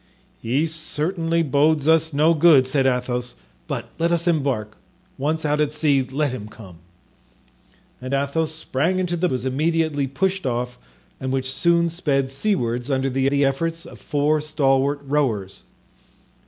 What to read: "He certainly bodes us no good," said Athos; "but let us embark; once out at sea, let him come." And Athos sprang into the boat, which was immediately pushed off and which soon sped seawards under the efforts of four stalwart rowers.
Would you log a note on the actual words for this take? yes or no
yes